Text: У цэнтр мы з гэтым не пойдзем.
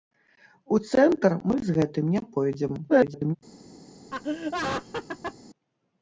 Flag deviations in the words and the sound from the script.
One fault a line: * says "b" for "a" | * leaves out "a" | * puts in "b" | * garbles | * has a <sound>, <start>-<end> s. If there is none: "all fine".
* garbles
* has a laugh, 4.1-5.4 s